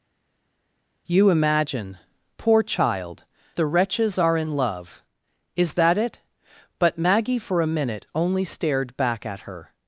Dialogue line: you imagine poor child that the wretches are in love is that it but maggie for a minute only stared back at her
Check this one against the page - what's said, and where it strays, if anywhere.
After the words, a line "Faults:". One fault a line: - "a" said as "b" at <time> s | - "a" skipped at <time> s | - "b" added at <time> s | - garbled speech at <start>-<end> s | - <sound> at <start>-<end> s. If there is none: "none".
you imagine poor child the wretches are in love is that it but maggie for a minute only stared back at her
Faults:
- "that" skipped at 3.3 s